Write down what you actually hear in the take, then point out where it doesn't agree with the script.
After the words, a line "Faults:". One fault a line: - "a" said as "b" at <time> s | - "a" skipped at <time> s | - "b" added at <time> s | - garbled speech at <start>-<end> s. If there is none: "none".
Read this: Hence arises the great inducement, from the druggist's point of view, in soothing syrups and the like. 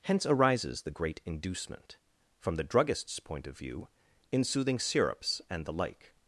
Hence arises the great inducement, from the druggist's point of view, in soothing syrups and the like.
Faults:
none